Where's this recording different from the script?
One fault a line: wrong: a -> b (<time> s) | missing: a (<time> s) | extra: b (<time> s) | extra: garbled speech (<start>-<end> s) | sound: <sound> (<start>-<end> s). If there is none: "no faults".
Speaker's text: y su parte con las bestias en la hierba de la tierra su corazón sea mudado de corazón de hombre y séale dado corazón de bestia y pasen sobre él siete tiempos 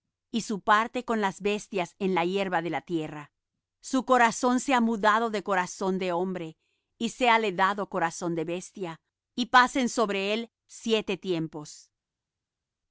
no faults